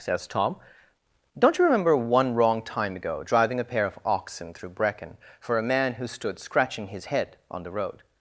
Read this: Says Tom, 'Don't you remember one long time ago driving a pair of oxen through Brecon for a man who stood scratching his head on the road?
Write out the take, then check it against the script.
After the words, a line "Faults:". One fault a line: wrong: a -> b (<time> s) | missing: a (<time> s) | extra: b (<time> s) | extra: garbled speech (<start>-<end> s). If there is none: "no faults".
Says Tom, 'Don't you remember one wrong time ago driving a pair of oxen through Brecon for a man who stood scratching his head on the road?
Faults:
wrong: long -> wrong (2.3 s)